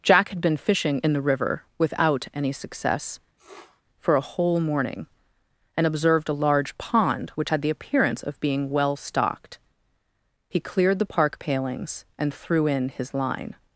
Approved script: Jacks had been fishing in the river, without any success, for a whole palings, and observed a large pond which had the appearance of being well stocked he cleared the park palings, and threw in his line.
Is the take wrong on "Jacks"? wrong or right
wrong